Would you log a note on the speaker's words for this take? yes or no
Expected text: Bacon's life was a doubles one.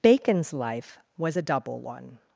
yes